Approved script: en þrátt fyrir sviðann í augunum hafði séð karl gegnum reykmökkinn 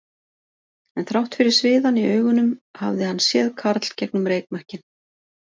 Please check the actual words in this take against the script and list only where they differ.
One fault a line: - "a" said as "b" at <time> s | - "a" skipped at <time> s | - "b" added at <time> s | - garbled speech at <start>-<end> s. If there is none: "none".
- "hann" added at 3.1 s